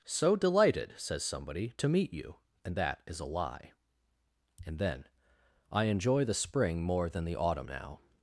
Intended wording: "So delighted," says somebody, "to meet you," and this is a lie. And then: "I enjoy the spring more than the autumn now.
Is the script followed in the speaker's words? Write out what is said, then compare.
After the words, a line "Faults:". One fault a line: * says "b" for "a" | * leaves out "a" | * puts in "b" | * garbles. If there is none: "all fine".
"So delighted," says somebody, "to meet you," and that is a lie. And then: "I enjoy the spring more than the autumn now.
Faults:
* says "that" for "this"